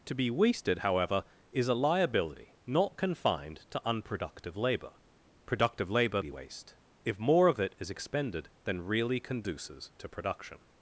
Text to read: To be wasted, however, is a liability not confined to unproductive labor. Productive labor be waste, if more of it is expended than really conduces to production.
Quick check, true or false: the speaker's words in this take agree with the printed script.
true